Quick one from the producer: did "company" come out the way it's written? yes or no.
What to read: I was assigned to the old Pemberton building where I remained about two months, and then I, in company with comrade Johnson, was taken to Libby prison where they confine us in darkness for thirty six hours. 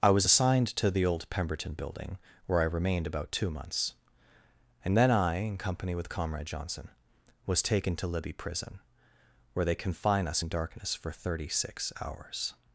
yes